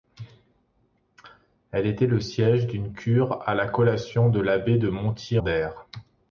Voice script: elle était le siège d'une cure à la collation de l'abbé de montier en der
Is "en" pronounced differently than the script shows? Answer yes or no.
yes